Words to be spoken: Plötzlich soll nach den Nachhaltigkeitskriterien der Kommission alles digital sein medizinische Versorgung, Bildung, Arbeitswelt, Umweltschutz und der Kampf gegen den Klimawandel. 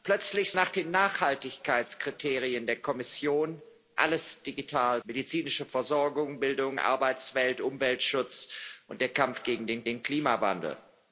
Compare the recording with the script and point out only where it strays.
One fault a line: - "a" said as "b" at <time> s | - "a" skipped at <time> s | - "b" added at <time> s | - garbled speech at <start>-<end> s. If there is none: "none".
- "soll" skipped at 0.5 s
- "sein" skipped at 5.0 s
- "den" added at 9.8 s